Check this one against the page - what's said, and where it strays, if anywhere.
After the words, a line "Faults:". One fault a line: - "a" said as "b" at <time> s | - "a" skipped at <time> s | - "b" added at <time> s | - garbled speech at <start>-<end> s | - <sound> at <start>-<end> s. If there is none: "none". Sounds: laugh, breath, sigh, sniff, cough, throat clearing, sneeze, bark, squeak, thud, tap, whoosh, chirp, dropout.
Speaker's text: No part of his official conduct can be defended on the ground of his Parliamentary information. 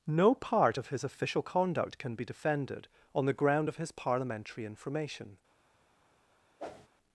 No part of his official conduct can be defended on the ground of his Parliamentary information.
Faults:
- whoosh at 6.6-6.9 s